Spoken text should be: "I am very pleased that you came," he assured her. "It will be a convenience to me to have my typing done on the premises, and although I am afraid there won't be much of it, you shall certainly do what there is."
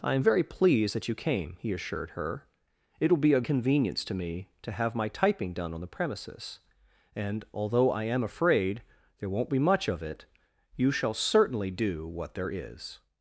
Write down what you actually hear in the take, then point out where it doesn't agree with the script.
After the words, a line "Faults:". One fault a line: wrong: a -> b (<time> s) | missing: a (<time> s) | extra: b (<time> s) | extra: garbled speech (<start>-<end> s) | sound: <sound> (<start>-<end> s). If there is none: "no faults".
"I am very pleased that you came," he assured her. "It will be a convenience to me to have my typing done on the premises, and although I am afraid there won't be much of it, you shall certainly do what there is."
Faults:
no faults